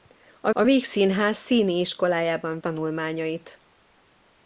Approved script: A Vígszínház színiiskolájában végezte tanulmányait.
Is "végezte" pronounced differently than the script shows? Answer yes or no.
yes